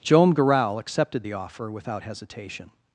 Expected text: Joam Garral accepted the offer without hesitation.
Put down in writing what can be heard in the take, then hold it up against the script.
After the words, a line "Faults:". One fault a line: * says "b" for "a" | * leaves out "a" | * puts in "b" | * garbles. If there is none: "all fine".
Joam Garral accepted the offer without hesitation.
Faults:
all fine